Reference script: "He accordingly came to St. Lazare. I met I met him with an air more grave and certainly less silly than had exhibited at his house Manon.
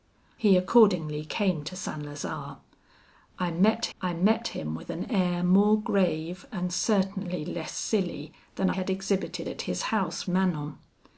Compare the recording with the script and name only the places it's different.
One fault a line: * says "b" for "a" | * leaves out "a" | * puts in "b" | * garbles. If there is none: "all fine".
all fine